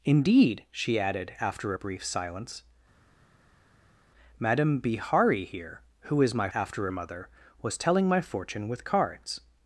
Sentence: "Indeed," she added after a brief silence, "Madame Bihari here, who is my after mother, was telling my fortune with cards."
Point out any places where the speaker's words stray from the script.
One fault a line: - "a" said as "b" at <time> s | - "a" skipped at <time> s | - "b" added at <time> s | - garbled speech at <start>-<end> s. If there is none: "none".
none